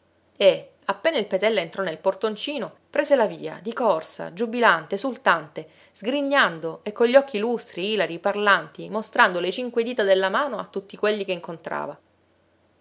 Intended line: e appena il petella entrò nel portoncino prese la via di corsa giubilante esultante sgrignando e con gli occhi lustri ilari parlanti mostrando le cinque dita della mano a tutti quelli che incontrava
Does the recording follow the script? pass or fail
pass